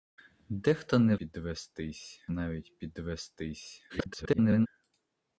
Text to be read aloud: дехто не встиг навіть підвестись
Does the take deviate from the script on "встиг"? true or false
true